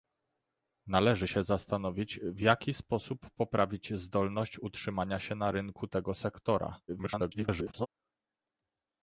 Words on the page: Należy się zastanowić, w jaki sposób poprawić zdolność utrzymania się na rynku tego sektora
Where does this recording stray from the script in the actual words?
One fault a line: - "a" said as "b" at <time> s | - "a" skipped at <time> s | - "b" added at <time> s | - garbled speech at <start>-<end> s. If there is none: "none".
- garbled speech at 6.9-7.9 s